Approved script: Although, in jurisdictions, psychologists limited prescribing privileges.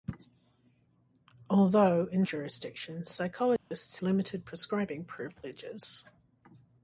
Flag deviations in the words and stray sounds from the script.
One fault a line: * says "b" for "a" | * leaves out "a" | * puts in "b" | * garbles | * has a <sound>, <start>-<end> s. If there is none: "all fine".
* has a dropout, 3.6-3.7 s